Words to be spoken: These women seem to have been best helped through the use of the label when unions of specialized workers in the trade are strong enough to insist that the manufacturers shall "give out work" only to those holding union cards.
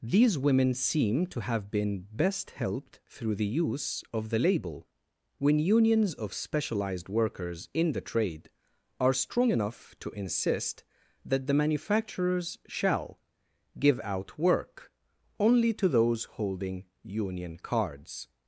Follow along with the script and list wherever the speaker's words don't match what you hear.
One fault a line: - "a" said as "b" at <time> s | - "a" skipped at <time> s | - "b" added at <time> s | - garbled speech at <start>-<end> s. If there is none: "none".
none